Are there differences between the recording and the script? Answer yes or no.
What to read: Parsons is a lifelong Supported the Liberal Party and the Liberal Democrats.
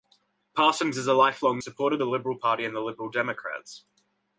no